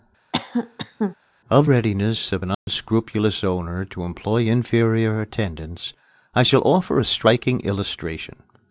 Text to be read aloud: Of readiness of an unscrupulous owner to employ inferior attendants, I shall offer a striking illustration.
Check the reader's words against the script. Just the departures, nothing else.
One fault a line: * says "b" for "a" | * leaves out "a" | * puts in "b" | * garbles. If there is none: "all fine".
all fine